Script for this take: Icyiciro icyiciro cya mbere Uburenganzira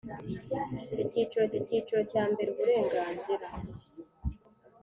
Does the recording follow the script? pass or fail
pass